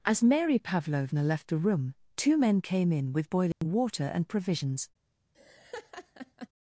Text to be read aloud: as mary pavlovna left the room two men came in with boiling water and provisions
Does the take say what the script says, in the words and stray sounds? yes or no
no